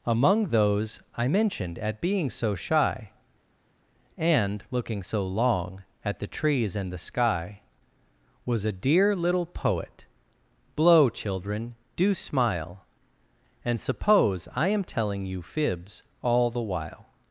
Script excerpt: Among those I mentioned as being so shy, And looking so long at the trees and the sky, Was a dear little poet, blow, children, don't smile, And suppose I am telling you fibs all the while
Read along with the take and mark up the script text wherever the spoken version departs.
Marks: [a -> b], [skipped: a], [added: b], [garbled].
Among those I mentioned [as -> at] being so shy, And looking so long at the trees and the sky, Was a dear little poet, blow, children, [don't -> do] smile, And suppose I am telling you fibs all the while